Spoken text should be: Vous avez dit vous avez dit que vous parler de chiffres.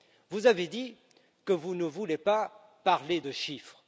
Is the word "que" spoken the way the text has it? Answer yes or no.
no